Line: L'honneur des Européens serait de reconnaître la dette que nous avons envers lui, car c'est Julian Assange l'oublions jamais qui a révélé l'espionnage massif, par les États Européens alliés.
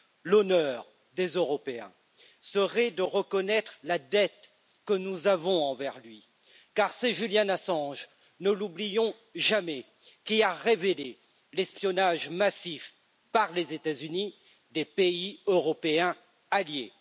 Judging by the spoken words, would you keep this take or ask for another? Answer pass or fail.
fail